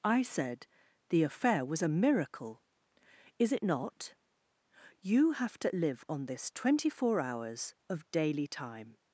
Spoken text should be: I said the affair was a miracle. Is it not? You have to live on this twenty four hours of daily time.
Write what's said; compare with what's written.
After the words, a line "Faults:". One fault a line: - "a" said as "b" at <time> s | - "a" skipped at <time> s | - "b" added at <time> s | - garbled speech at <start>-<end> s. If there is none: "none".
I said the affair was a miracle. Is it not? You have to live on this twenty four hours of daily time.
Faults:
none